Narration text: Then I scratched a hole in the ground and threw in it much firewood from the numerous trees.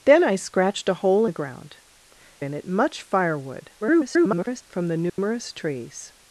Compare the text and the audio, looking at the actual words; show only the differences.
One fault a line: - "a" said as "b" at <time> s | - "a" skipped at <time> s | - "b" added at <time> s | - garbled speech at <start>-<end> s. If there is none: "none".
- "in" skipped at 1.2 s
- "and threw" skipped at 1.8 s
- garbled speech at 3.8-4.6 s